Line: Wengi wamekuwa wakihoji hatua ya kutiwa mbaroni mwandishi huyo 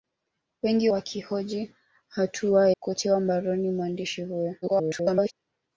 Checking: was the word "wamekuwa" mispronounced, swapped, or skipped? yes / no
yes